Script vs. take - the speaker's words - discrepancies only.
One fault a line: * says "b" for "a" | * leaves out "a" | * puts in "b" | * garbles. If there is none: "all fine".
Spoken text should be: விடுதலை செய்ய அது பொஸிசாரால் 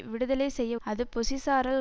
all fine